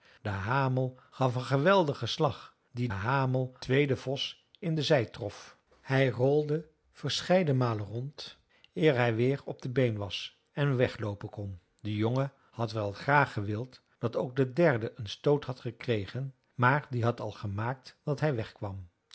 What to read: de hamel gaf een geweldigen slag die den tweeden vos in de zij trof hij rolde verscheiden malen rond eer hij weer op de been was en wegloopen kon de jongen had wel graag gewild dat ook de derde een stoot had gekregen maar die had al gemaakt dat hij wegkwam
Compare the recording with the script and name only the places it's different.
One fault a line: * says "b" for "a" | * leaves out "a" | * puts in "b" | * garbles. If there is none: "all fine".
* says "hamel" for "den"